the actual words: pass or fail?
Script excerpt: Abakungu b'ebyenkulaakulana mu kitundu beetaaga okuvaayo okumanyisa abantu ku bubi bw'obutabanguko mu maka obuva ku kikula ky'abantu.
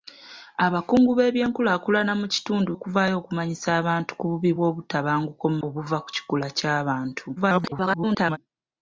fail